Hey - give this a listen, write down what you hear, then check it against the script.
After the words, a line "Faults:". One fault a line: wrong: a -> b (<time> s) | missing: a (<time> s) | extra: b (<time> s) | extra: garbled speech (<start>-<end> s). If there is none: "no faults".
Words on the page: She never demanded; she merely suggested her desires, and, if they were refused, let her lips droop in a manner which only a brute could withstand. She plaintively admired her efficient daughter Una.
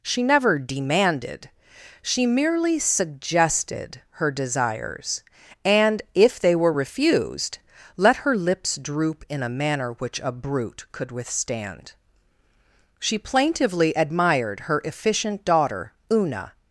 She never demanded; she merely suggested her desires, and, if they were refused, let her lips droop in a manner which a brute could withstand. She plaintively admired her efficient daughter Una.
Faults:
missing: only (10.2 s)